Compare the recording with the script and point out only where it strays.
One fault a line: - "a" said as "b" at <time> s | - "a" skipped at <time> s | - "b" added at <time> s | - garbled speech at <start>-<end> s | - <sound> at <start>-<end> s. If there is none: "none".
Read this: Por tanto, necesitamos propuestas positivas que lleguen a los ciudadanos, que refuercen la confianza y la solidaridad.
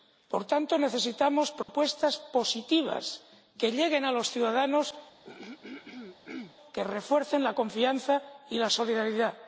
- dropout at 1.6-1.7 s
- throat clearing at 5.2-6.6 s